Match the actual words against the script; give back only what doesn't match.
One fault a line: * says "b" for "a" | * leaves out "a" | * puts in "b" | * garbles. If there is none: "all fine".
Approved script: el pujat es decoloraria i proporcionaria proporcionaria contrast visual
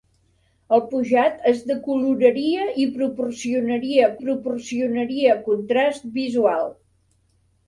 all fine